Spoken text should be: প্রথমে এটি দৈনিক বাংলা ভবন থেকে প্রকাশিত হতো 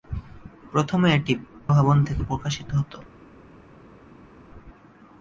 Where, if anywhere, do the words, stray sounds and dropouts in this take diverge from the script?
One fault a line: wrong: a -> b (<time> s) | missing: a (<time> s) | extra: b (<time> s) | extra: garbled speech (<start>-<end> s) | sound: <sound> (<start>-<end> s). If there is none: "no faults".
missing: দৈনিক বাংলা (1.3 s)